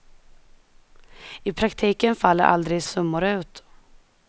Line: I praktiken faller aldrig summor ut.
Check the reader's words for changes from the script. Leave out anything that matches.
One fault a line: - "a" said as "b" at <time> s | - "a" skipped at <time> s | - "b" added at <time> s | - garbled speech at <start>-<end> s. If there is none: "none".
none